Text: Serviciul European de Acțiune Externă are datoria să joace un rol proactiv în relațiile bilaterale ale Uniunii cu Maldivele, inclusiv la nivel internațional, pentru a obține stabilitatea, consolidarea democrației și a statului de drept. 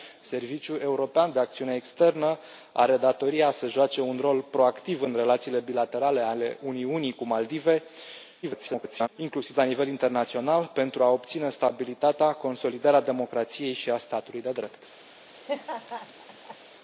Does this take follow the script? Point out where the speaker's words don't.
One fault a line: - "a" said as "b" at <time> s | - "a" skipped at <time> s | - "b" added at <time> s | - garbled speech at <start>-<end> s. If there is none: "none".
- garbled speech at 8.4-9.1 s